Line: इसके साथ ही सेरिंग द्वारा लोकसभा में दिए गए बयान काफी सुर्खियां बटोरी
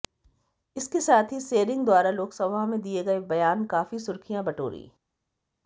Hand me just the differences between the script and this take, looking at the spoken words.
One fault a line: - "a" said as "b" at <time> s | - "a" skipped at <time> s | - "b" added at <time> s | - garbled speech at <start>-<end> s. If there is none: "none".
none